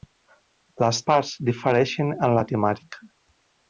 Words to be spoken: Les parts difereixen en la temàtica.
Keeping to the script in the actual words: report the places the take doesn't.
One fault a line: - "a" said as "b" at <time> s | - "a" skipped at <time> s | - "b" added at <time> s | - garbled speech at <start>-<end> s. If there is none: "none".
none